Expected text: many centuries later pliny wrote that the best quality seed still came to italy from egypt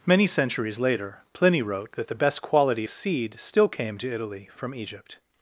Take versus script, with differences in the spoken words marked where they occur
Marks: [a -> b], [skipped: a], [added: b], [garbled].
many centuries later pliny wrote that the best quality seed still came to italy from egypt